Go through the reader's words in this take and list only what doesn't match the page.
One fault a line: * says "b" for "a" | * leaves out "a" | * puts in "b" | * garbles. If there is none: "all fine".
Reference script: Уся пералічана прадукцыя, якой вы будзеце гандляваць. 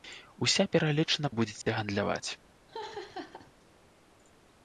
* leaves out "прадукцыя якой"